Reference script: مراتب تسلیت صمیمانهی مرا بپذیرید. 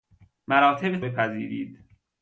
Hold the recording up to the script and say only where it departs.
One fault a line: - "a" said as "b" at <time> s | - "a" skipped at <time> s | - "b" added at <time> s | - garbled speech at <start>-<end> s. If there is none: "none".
- "تسلیت صمیمانهی مرا" skipped at 1.0 s